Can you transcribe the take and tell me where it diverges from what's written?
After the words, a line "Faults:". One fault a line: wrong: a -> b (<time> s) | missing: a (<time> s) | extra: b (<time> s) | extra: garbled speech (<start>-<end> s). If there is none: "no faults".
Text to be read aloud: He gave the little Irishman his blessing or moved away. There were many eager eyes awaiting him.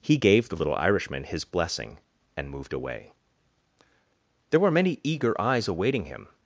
He gave the little Irishman his blessing and moved away. There were many eager eyes awaiting him.
Faults:
wrong: or -> and (2.4 s)